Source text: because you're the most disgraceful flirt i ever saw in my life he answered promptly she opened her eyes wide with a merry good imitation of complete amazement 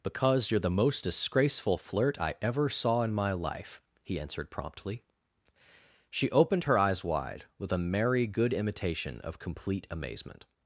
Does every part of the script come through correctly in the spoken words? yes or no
yes